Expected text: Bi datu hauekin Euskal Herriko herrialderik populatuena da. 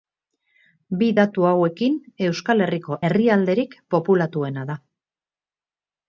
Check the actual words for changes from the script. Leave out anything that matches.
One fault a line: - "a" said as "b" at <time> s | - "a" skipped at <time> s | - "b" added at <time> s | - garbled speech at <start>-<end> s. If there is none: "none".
none